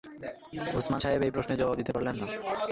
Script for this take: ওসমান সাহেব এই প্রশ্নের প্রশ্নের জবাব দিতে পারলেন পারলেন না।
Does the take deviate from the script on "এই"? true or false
false